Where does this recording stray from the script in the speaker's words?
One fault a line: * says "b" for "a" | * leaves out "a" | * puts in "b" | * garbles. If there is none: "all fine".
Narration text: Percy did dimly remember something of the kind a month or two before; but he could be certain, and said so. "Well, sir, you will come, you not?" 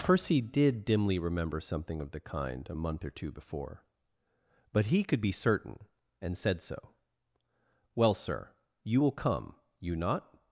all fine